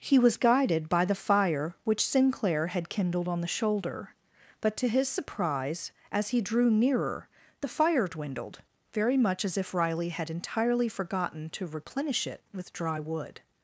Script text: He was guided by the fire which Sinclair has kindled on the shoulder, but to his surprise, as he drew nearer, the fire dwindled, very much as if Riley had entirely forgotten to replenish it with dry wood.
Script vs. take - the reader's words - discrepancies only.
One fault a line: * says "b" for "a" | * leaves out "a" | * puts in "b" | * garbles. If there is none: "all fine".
* says "had" for "has"